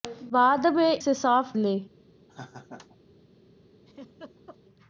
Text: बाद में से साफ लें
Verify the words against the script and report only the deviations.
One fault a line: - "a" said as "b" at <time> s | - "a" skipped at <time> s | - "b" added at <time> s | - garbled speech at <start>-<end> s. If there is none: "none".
none